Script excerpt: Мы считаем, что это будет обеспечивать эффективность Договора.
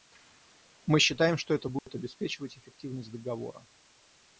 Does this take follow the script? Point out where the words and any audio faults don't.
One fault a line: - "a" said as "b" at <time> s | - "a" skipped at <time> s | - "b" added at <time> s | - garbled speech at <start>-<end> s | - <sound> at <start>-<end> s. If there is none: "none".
- dropout at 1.8-1.9 s